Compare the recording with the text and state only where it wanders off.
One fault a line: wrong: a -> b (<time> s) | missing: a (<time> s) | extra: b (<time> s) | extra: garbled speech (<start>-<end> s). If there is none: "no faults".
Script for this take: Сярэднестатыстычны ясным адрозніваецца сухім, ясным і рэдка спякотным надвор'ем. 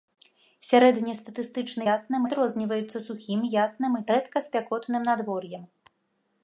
no faults